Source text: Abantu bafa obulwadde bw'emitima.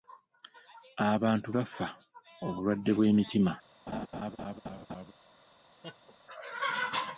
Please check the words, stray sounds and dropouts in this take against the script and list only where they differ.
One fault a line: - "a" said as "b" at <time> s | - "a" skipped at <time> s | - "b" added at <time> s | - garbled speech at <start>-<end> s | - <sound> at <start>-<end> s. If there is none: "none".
- laugh at 3.9-5.1 s
- laugh at 5.8-6.2 s